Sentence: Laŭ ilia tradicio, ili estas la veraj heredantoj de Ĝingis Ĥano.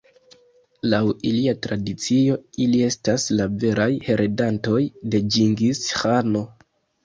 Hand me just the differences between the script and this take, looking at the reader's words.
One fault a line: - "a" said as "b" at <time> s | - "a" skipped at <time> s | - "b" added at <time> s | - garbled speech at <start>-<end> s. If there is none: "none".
none